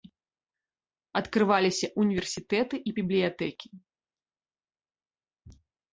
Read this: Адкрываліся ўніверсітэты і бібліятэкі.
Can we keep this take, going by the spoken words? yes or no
yes